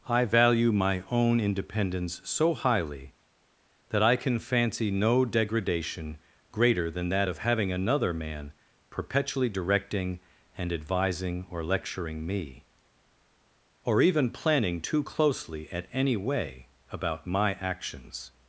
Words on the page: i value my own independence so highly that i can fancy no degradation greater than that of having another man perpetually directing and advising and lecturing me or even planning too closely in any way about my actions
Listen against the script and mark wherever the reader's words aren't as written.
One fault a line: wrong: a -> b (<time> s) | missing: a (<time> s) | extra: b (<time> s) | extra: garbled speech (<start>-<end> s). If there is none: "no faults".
wrong: and -> or (11.5 s)
wrong: in -> at (15.7 s)